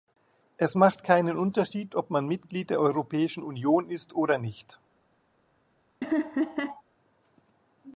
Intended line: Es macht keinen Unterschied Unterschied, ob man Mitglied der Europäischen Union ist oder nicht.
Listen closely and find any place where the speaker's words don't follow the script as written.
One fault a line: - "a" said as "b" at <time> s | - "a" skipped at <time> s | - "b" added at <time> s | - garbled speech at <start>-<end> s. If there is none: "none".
- "Unterschied" skipped at 1.9 s